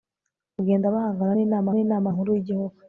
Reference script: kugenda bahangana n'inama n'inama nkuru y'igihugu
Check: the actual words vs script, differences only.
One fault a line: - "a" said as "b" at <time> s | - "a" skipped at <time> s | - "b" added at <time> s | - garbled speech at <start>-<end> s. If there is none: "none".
none